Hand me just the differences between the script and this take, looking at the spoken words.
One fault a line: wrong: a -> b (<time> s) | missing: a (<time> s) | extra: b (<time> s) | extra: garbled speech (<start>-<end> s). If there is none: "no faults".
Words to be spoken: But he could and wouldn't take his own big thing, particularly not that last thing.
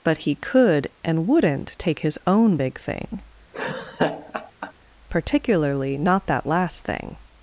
no faults